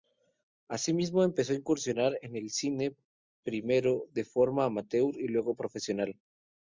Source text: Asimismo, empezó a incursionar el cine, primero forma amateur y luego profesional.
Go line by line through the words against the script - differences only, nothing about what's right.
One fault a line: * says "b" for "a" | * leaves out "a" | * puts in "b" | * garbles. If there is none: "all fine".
* puts in "en"
* puts in "de"